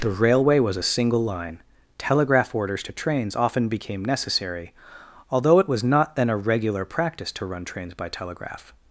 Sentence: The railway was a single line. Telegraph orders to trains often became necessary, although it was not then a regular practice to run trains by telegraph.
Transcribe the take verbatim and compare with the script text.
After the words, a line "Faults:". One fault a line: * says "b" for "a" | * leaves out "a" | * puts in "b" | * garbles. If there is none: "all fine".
The railway was a single line. Telegraph orders to trains often became necessary, although it was not then a regular practice to run trains by telegraph.
Faults:
all fine